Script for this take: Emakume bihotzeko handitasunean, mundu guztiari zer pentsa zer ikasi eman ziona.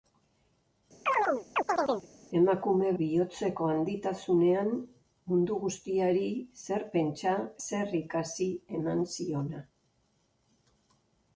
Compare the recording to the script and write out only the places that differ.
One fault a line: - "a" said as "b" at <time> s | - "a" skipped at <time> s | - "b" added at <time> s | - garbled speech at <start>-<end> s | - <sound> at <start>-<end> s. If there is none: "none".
- chirp at 1.1-2.1 s